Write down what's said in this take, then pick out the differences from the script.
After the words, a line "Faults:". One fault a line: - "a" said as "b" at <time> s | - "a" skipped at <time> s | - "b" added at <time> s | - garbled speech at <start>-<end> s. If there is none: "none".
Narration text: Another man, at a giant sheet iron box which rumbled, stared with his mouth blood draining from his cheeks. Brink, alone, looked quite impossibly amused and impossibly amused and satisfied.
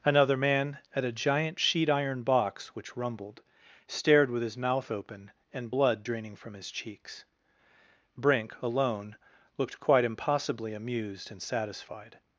Another man, at a giant sheet iron box which rumbled, stared with his mouth open and blood draining from his cheeks. Brink, alone, looked quite impossibly amused and satisfied.
Faults:
- "open and" added at 4.9 s
- "impossibly amused and" skipped at 11.4 s